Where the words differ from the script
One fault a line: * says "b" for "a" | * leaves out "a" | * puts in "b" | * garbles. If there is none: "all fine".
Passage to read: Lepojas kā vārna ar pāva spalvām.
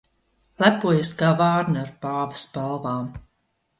all fine